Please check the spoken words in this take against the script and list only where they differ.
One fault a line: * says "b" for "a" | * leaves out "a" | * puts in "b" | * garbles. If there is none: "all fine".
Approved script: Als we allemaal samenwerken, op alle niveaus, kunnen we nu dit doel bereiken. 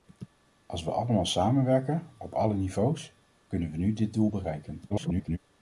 * garbles